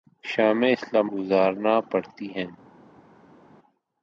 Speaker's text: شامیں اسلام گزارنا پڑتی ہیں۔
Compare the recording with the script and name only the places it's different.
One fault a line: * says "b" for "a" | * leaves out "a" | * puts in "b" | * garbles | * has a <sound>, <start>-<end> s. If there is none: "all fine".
all fine